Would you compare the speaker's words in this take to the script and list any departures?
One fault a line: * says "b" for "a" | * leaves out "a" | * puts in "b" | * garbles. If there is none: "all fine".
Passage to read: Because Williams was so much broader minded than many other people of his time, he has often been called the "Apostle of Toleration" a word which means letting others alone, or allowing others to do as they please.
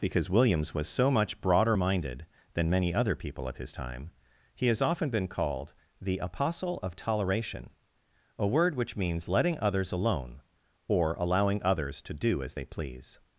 all fine